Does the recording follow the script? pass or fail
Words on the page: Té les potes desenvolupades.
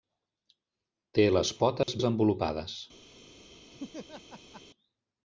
pass